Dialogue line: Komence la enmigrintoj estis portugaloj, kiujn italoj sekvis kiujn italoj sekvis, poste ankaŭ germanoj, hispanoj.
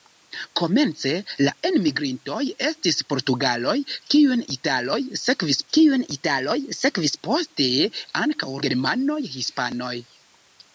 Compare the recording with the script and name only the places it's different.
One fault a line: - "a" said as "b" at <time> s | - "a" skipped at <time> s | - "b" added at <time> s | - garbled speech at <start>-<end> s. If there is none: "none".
none